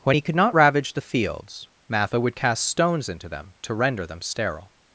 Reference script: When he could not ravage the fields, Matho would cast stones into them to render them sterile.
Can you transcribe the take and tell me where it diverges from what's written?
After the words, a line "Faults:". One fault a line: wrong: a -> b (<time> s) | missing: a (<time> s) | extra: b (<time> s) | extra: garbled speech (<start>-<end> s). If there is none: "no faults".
When he could not ravage the fields, Matho would cast stones into them to render them sterile.
Faults:
no faults